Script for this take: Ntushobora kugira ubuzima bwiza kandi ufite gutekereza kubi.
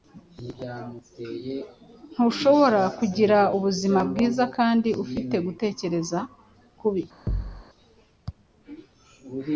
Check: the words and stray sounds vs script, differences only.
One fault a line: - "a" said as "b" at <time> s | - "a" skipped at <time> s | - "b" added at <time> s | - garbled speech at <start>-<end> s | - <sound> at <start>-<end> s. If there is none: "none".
- thud at 7.3-7.6 s